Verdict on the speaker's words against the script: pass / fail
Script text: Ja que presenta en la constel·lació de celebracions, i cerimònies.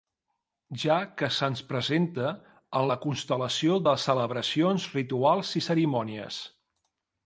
fail